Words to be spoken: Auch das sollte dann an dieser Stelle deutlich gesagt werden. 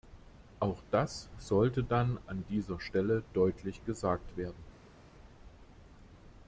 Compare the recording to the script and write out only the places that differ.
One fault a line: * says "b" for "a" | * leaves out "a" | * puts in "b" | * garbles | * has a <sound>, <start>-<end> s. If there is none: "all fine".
all fine